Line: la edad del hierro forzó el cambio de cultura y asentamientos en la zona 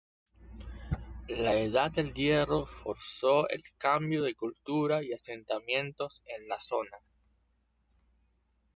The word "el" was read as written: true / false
true